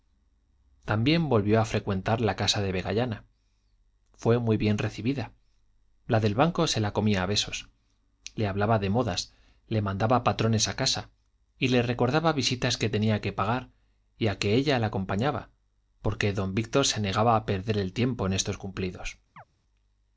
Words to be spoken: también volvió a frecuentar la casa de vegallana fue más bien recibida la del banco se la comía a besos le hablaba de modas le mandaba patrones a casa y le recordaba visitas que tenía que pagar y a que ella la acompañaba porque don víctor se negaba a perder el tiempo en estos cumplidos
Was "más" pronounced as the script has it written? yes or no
no